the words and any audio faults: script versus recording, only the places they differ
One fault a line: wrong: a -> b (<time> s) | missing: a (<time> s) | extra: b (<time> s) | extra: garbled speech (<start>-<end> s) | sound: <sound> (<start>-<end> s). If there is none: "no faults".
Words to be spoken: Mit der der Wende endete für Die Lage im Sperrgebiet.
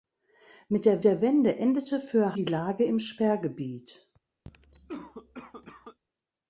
sound: cough (4.4-6.0 s)